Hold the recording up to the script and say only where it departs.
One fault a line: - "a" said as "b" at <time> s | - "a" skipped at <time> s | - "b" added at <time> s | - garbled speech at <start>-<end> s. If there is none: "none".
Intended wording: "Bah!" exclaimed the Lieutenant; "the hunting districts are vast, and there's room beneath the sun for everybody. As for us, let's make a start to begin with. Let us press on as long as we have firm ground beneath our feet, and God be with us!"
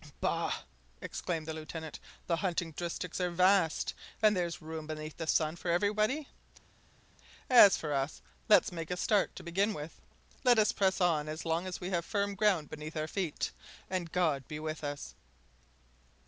none